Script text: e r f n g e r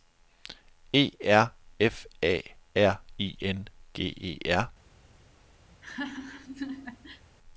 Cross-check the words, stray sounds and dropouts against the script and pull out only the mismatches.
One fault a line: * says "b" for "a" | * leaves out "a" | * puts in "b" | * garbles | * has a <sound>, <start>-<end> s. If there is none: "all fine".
* puts in "a r i"
* has a laugh, 5.7-7.2 s